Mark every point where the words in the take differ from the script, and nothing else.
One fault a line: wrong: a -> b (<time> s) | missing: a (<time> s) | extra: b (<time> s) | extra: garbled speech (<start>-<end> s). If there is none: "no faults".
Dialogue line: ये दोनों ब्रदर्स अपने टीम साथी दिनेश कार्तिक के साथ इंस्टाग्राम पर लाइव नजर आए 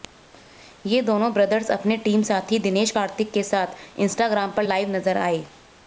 no faults